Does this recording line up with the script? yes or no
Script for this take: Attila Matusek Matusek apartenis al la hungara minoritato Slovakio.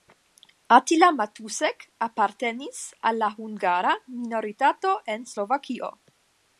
no